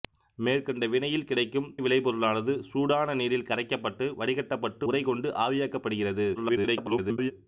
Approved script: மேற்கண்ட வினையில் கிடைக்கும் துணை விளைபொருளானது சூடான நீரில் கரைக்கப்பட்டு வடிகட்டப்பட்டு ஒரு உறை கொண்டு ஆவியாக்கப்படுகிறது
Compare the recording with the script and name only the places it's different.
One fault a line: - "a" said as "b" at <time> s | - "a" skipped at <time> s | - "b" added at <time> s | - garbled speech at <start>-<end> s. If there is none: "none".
- "துணை" skipped at 1.7 s
- "ஒரு" skipped at 4.9 s
- garbled speech at 6.4-7.3 s